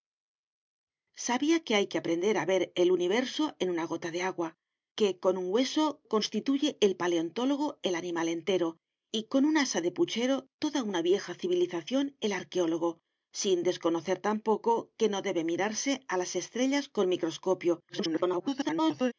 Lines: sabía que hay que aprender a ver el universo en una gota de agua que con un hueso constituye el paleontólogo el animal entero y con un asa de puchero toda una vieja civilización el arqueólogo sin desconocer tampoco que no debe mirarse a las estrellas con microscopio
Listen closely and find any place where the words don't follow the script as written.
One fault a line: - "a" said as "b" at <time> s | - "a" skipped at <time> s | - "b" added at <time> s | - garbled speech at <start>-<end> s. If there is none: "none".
- garbled speech at 17.9-19.1 s